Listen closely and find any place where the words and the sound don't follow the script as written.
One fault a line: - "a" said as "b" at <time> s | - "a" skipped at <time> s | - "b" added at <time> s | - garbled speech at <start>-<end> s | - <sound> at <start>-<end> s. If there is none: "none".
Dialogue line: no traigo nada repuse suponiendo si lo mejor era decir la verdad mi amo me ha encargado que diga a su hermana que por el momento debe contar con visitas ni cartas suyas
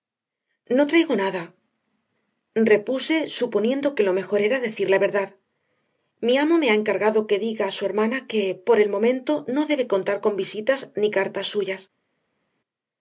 - "si" said as "que" at 4.0 s
- "no" added at 9.5 s